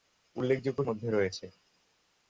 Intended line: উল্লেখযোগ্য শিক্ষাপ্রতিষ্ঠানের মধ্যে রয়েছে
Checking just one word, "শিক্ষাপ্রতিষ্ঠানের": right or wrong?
wrong